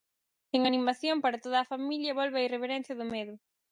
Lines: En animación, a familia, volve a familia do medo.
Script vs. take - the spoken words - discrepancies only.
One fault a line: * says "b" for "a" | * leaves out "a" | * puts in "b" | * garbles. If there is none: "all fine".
* puts in "para toda"
* says "irreverencia" for "familia"